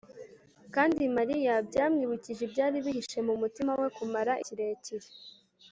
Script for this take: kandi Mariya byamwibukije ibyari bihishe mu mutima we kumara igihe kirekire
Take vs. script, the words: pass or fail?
fail